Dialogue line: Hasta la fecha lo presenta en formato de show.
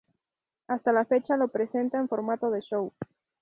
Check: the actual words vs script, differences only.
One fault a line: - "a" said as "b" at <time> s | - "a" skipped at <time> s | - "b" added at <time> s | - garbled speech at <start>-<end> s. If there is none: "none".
none